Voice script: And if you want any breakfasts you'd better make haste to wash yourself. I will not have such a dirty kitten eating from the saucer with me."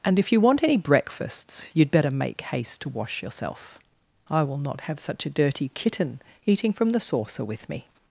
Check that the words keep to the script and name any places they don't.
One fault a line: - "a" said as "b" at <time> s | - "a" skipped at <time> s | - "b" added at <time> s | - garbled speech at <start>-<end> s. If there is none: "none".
none